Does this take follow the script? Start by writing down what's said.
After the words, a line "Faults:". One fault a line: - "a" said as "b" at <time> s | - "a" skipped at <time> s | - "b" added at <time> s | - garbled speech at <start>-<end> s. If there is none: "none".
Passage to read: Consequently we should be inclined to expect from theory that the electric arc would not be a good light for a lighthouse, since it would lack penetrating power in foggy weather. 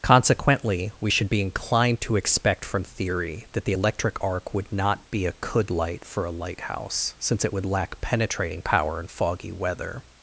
Consequently we should be inclined to expect from theory that the electric arc would not be a could light for a lighthouse, since it would lack penetrating power in foggy weather.
Faults:
- "good" said as "could" at 5.4 s